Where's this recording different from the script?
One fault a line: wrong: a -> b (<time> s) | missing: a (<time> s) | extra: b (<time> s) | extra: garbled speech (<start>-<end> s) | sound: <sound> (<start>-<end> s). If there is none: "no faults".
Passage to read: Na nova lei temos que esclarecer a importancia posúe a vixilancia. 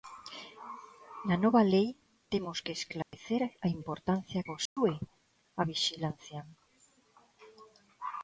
sound: dropout (3.0-3.1 s)
sound: dropout (4.7-4.8 s)